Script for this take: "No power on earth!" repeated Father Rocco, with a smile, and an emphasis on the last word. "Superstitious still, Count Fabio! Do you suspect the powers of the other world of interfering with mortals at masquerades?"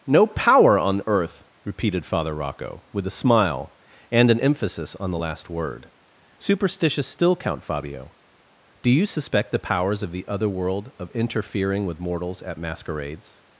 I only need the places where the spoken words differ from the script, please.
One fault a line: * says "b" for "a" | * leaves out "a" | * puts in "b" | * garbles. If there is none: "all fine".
all fine